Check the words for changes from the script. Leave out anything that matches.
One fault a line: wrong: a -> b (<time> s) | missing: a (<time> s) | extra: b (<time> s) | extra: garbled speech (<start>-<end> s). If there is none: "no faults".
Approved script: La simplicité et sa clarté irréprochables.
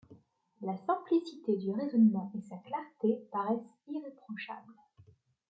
extra: du raisonnement (1.6 s)
extra: paraissent (3.3 s)